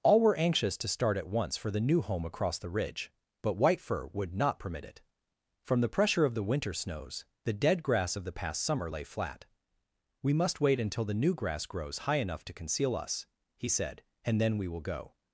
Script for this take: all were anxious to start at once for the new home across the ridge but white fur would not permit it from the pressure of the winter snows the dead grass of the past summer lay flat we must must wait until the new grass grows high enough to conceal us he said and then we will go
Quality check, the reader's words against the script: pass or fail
fail